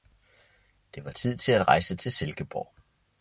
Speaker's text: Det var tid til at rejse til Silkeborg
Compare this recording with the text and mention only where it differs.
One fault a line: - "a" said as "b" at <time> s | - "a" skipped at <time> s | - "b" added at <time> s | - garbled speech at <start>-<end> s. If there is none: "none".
none